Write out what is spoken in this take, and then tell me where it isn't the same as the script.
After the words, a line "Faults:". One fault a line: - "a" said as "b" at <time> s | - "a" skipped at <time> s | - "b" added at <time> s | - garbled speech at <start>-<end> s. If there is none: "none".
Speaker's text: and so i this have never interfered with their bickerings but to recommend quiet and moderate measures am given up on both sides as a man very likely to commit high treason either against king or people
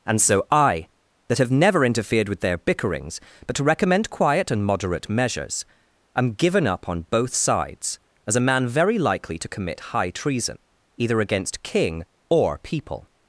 and so i that have never interfered with their bickerings but to recommend quiet and moderate measures am given up on both sides as a man very likely to commit high treason either against king or people
Faults:
- "this" said as "that" at 1.3 s